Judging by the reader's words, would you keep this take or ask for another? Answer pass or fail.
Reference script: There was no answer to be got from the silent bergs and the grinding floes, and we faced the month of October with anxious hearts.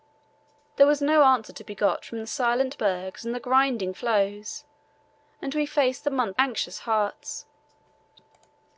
fail